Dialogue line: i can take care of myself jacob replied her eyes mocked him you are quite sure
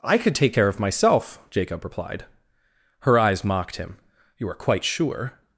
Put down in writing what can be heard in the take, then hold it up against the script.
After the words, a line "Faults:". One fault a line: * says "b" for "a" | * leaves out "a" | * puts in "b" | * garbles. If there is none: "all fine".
i could take care of myself jacob replied her eyes mocked him you are quite sure
Faults:
* says "could" for "can"